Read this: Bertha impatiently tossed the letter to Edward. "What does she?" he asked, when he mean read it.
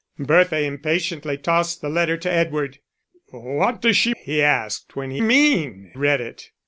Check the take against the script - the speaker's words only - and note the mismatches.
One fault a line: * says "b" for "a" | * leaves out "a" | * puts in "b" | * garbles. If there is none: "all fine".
all fine